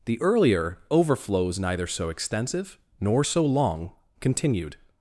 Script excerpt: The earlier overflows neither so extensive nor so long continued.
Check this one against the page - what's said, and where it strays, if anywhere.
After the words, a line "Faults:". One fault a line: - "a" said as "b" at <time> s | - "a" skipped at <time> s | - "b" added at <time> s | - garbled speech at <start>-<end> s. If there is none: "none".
The earlier overflows neither so extensive nor so long continued.
Faults:
none